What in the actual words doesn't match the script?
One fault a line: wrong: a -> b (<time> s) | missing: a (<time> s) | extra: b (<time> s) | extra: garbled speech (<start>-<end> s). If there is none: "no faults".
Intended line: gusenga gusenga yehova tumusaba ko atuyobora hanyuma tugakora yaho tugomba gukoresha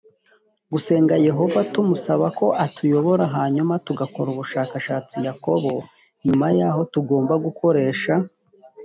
missing: gusenga (1.1 s)
extra: ubushakashatsi yakobo nyuma (4.3 s)